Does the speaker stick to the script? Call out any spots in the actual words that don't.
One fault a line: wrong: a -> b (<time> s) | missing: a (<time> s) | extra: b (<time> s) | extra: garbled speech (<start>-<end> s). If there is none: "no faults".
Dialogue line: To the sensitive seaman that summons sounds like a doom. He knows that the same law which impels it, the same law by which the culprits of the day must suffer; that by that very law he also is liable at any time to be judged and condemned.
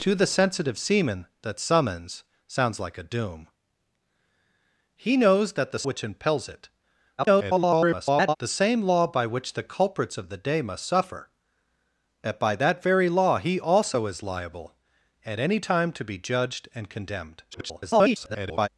missing: same law (5.8 s)
extra: garbled speech (7.2-8.4 s)
extra: garbled speech (17.5-18.7 s)